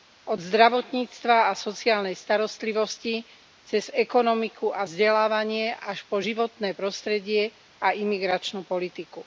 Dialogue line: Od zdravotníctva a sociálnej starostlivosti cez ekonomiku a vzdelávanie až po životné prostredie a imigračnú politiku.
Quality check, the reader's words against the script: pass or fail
pass